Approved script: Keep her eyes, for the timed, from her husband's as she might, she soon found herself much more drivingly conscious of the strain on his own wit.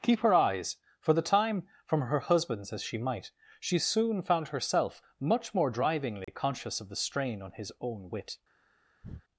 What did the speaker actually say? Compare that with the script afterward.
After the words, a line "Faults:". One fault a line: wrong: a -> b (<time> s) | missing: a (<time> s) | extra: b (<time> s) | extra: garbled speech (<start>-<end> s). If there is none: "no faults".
Keep her eyes, for the time, from her husband's as she might, she soon found herself much more drivingly conscious of the strain on his own wit.
Faults:
wrong: timed -> time (1.2 s)